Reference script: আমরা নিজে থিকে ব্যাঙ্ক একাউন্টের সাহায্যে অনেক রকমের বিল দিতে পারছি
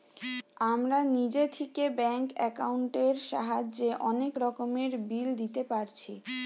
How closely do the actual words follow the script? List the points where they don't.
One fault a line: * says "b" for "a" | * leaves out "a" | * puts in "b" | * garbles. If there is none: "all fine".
all fine